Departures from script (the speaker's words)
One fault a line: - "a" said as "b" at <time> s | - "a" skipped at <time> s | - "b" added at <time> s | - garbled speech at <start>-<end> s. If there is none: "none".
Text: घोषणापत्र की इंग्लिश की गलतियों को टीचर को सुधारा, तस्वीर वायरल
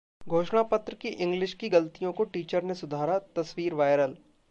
- "को" said as "ने" at 2.6 s